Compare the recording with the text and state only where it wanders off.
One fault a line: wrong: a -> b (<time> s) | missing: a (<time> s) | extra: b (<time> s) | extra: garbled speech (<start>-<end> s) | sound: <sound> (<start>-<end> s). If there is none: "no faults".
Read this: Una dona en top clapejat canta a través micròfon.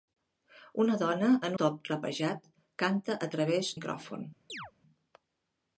sound: chirp (4.5-4.7 s)